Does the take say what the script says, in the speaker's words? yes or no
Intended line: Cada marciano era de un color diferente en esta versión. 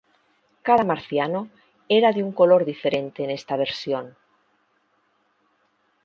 yes